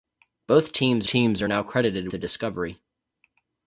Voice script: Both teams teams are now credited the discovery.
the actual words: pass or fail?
pass